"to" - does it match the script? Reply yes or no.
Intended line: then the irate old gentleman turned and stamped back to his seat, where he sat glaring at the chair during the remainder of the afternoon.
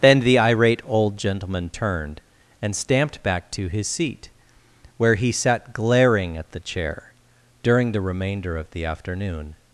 yes